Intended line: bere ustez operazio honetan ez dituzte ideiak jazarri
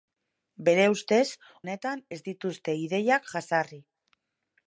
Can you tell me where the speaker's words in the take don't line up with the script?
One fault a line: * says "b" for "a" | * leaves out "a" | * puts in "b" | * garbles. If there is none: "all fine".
* leaves out "operazio"